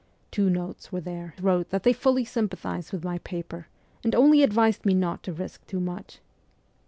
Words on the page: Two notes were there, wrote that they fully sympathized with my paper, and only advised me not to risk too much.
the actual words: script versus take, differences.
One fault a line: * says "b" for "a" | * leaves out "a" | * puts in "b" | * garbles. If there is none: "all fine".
all fine